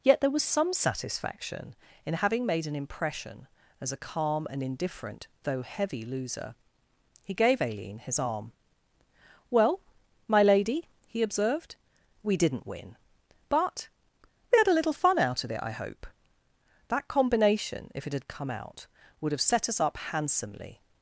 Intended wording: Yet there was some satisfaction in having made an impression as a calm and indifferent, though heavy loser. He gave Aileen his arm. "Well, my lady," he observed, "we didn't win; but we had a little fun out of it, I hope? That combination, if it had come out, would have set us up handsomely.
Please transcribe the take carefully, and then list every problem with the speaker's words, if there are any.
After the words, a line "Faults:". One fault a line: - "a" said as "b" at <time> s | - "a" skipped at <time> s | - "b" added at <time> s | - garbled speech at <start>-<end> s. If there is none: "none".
Yet there was some satisfaction in having made an impression as a calm and indifferent, though heavy loser. He gave Aileen his arm. "Well, my lady," he observed, "we didn't win; but we had a little fun out of it, I hope? That combination, if it had come out, would have set us up handsomely.
Faults:
none